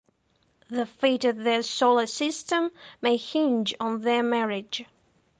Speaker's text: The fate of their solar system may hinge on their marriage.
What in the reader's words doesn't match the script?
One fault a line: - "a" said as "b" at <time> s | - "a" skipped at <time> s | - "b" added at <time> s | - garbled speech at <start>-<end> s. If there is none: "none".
none